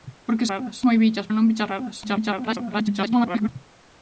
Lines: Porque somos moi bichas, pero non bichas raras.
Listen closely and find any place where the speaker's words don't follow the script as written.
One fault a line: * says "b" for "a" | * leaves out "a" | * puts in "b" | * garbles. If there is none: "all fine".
* says "raras" for "somos"
* leaves out "pero"
* garbles